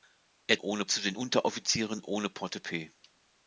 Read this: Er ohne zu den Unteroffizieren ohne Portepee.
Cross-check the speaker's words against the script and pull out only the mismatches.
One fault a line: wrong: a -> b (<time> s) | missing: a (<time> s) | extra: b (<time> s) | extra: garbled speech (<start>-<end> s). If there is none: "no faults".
no faults